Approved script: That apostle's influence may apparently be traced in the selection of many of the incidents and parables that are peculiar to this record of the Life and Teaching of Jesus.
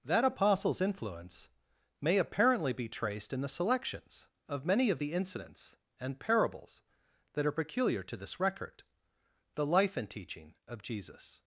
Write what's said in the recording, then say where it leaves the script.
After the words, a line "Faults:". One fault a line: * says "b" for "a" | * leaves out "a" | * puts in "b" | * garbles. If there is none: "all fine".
That apostle's influence may apparently be traced in the selections of many of the incidents and parables that are peculiar to this record the Life and Teaching of Jesus.
Faults:
* says "selections" for "selection"
* leaves out "of"